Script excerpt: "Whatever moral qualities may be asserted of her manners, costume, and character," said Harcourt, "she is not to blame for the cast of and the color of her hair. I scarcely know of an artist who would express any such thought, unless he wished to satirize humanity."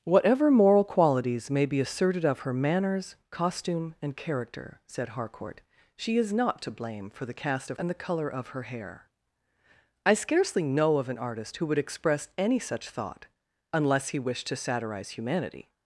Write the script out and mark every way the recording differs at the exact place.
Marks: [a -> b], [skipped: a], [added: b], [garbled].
"Whatever moral qualities may be asserted of her manners, costume, and character," said Harcourt, "she is not to blame for the cast of and the color of her hair. I scarcely know of an artist who would express any such thought, unless he wished to satirize humanity."